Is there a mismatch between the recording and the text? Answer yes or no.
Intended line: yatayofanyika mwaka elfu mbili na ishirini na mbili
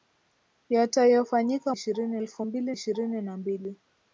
yes